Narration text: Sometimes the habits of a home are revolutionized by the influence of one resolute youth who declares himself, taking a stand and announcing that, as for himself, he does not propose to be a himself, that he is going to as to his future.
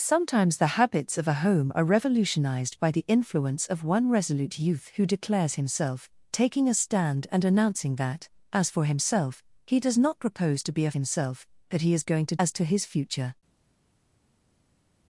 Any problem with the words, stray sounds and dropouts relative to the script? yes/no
no